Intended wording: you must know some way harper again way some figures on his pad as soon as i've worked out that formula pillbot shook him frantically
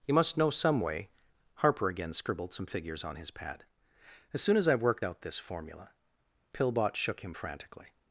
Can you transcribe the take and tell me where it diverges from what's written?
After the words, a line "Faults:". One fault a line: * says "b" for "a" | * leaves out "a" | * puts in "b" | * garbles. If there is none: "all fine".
you must know some way harper again scribbled some figures on his pad as soon as i've worked out this formula pillbot shook him frantically
Faults:
* says "scribbled" for "way"
* says "this" for "that"